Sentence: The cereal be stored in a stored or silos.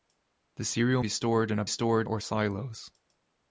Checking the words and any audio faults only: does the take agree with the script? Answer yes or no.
yes